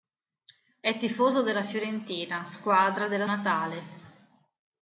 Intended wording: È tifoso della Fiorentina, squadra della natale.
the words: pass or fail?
pass